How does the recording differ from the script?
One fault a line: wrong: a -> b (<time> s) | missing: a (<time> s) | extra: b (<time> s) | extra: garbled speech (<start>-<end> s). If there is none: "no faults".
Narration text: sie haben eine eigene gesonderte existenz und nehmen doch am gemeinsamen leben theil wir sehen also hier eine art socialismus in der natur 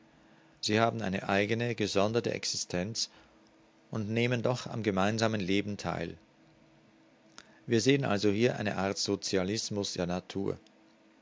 missing: in (9.9 s)